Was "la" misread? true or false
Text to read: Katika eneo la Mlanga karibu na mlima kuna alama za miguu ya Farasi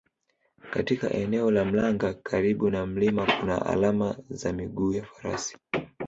false